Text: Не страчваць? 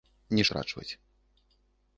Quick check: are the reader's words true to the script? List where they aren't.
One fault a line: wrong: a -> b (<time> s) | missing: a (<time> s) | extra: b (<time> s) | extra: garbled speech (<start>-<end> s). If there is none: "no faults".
no faults